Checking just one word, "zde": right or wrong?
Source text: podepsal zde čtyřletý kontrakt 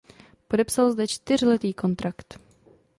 right